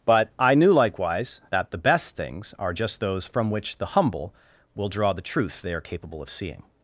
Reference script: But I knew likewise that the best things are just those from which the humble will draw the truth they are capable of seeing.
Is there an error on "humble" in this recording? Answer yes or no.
no